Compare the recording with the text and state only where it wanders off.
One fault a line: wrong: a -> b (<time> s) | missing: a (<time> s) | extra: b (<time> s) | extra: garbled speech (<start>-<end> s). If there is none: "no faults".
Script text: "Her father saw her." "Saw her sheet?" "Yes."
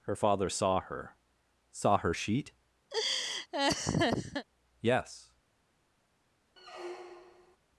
no faults